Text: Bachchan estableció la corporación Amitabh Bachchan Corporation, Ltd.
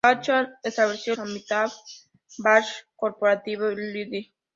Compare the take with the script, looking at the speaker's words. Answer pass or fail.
fail